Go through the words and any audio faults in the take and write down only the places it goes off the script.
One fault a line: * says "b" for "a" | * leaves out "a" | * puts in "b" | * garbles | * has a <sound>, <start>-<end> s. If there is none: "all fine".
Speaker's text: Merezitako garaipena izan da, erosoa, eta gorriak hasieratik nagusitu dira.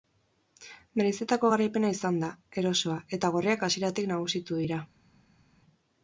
all fine